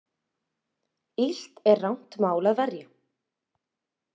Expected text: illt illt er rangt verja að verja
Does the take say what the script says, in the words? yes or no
no